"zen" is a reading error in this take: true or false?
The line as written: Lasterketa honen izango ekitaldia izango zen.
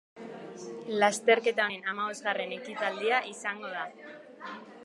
true